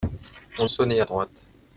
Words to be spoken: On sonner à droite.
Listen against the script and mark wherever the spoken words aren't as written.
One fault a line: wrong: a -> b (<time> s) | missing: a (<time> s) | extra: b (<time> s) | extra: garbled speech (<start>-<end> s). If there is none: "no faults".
no faults